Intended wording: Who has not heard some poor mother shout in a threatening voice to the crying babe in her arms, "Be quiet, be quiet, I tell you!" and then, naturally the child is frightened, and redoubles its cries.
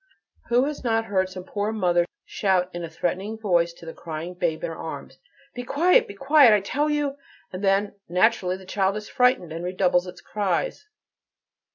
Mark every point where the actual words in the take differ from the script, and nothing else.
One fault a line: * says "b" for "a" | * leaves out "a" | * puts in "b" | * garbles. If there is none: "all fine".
all fine